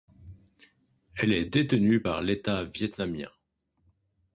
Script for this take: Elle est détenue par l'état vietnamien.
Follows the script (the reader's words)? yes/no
yes